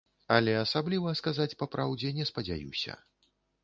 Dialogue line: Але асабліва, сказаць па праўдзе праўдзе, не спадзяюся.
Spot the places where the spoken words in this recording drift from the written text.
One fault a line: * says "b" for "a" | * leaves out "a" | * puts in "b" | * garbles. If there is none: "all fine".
* leaves out "праўдзе"